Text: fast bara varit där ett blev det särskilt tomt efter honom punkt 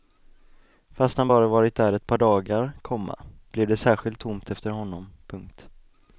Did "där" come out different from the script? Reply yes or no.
no